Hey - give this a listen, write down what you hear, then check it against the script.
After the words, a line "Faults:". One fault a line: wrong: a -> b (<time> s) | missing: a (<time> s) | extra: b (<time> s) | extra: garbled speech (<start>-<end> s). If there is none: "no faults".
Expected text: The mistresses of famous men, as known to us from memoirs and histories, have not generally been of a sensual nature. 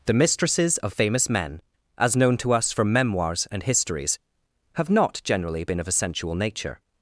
The mistresses of famous men, as known to us from memoirs and histories, have not generally been of a sensual nature.
Faults:
no faults